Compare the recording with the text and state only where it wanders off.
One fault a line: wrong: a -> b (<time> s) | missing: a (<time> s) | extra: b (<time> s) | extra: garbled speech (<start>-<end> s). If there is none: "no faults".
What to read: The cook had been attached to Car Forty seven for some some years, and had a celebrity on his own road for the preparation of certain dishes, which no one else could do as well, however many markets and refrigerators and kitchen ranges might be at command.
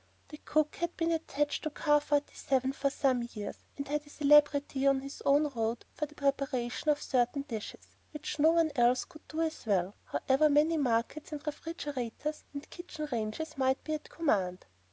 missing: some (3.2 s)